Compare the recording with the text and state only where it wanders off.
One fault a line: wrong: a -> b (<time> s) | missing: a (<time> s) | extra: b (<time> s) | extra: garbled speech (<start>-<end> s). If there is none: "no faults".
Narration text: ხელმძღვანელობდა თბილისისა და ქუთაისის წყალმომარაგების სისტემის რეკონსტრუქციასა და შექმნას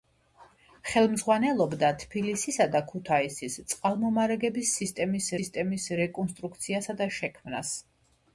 extra: სისტემის (5.4 s)